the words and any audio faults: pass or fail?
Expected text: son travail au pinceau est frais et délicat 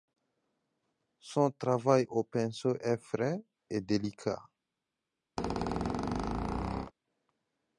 fail